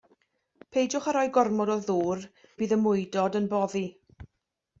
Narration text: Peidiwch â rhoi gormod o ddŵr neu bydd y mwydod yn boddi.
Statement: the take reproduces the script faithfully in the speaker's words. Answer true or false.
false